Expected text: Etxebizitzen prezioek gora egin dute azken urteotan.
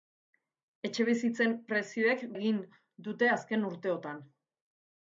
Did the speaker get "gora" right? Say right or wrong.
wrong